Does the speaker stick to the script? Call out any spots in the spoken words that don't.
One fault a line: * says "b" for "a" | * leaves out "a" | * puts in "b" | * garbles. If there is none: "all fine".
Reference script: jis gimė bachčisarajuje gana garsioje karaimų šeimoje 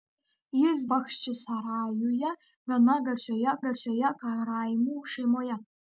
* leaves out "gimė"
* puts in "garsioje"